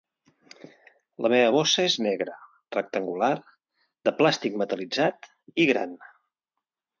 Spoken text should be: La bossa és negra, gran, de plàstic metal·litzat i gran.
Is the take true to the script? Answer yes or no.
no